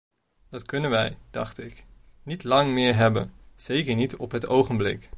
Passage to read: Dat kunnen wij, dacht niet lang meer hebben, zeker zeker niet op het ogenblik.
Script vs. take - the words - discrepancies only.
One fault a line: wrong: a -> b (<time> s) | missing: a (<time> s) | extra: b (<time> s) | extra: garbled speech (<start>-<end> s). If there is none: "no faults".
extra: ik (1.6 s)
missing: zeker (4.0 s)